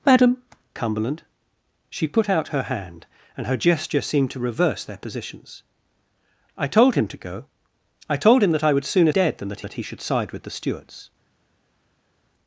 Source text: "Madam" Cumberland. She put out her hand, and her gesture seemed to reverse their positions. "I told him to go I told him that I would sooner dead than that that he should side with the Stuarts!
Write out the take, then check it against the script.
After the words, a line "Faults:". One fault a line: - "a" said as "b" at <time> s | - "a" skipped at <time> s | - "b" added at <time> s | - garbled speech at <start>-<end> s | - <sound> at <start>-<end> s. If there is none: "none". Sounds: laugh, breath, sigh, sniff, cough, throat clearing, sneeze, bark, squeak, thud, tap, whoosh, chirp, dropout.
"Madam" Cumberland. She put out her hand, and her gesture seemed to reverse their positions. "I told him to go I told him that I would sooner dead than that that he should side with the Stuarts!
Faults:
none